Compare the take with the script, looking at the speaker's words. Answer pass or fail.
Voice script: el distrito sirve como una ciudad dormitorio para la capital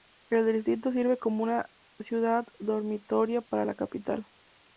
pass